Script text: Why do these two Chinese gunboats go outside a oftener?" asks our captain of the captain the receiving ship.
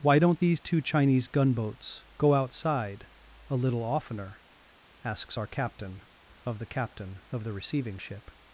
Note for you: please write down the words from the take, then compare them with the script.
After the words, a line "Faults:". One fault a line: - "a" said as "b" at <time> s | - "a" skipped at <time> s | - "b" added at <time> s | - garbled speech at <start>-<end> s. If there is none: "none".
Why don't these two Chinese gunboats go outside a little oftener?" asks our captain of the captain of the receiving ship.
Faults:
- "do" said as "don't" at 0.2 s
- "little" added at 3.6 s
- "of" added at 7.3 s